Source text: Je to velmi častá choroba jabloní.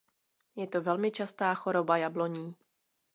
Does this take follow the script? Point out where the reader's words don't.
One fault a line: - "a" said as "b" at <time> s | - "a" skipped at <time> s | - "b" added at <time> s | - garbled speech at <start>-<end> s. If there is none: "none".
none